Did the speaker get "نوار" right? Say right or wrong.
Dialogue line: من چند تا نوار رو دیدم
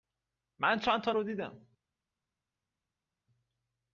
wrong